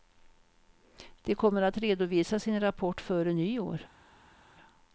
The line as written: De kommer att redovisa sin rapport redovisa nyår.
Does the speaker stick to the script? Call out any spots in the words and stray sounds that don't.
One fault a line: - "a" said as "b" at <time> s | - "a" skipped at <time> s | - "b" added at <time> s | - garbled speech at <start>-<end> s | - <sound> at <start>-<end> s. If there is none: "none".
- "redovisa" said as "före" at 3.0 s